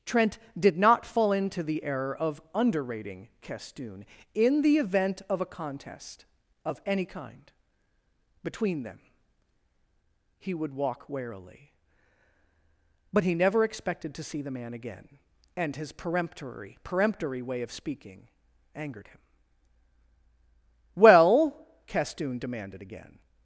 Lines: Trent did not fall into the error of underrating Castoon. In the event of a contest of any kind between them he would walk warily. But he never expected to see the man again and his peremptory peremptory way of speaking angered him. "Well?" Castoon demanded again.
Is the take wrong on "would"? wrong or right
right